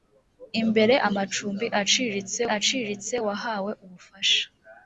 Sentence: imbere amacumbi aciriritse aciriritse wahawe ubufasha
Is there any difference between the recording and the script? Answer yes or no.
no